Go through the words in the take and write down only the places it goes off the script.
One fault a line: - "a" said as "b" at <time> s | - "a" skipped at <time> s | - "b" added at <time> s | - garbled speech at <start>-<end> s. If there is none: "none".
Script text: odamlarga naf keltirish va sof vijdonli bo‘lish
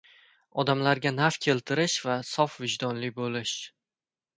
none